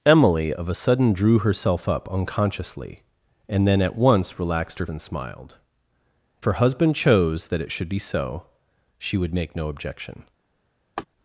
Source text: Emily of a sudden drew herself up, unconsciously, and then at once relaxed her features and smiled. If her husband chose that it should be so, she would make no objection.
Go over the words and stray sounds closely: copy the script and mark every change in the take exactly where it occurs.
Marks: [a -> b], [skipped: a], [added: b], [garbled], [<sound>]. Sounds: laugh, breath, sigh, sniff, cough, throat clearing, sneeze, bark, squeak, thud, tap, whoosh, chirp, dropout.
Emily of a sudden drew herself up, unconsciously, and then at once relaxed her [skipped: features] and smiled. [skipped: If] her husband chose that it should be so, she would make no objection. [laugh]